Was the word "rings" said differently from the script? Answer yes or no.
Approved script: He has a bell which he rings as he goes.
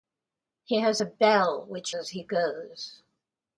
yes